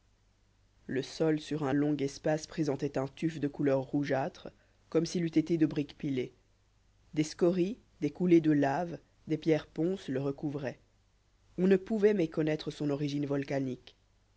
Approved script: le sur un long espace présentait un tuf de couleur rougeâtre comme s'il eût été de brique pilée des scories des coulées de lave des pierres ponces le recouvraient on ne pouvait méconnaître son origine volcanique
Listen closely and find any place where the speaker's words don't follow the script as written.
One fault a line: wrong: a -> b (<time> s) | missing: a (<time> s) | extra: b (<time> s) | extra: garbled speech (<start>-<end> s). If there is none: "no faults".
extra: sol (1.0 s)